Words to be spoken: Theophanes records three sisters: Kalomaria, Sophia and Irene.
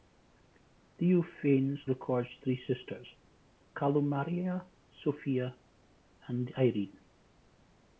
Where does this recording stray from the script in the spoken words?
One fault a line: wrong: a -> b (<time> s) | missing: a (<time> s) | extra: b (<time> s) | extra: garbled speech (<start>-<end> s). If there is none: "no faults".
no faults